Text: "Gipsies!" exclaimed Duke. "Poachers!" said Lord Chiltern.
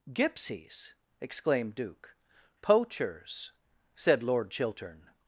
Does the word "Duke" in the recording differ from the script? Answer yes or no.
no